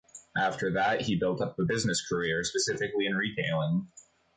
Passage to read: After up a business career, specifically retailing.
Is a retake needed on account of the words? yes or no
yes